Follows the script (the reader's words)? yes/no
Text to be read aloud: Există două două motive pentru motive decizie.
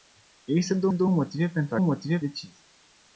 yes